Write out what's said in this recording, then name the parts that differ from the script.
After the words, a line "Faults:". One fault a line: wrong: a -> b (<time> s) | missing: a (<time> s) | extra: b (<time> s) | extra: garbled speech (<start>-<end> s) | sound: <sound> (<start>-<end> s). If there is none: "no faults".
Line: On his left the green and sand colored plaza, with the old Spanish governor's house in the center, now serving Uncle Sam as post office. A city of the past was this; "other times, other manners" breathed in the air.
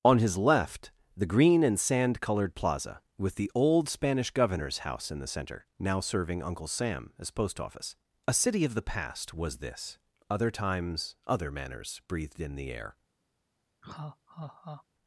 On his left the green and sand colored plaza, with the old Spanish governor's house in the center, now serving Uncle Sam as post office. A city of the past was this; "other times, other manners" breathed in the air.
Faults:
sound: laugh (13.8-14.8 s)